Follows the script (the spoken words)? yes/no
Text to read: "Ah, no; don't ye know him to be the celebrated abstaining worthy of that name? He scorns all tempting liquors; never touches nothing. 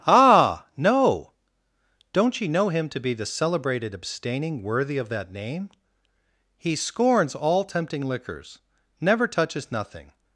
yes